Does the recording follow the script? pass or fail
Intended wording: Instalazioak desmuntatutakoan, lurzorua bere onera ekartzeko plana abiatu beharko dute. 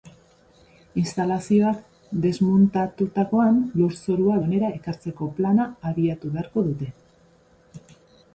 fail